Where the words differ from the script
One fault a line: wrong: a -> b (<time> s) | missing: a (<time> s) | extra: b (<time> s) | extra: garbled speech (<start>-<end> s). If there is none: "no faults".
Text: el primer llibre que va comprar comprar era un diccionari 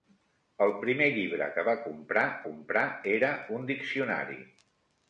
no faults